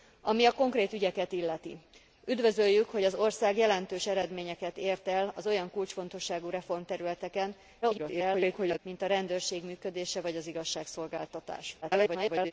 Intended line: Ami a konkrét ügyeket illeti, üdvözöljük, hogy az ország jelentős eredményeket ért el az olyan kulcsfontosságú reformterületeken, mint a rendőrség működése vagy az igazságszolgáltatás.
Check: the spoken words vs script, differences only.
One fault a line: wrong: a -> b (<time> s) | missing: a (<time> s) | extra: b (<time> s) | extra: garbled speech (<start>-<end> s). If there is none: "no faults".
extra: garbled speech (7.8-8.8 s)
extra: garbled speech (11.8-12.5 s)